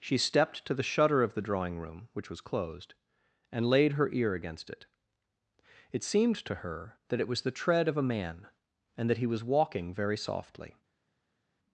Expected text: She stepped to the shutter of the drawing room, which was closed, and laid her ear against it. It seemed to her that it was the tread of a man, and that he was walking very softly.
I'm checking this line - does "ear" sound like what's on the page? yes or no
yes